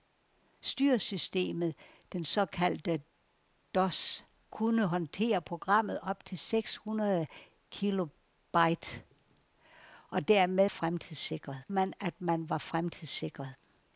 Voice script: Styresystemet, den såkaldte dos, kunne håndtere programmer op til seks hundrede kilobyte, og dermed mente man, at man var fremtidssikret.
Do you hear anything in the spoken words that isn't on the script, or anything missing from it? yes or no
yes